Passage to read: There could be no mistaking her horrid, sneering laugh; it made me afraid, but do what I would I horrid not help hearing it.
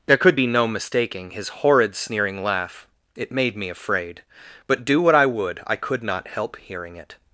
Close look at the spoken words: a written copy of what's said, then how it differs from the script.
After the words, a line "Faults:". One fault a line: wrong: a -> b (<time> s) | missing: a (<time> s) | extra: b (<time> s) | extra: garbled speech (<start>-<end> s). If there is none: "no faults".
There could be no mistaking his horrid, sneering laugh; it made me afraid, but do what I would I could not help hearing it.
Faults:
wrong: her -> his (1.3 s)
wrong: horrid -> could (5.8 s)